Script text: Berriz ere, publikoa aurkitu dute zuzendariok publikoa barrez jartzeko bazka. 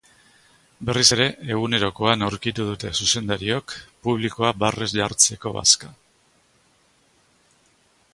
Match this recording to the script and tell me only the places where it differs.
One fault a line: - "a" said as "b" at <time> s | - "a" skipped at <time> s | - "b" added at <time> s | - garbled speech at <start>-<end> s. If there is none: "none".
- "publikoa" said as "egunerokoan" at 1.5 s